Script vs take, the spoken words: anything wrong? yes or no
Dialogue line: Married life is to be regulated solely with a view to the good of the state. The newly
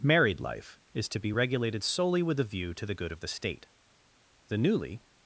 no